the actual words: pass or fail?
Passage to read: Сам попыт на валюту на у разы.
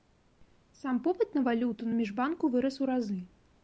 fail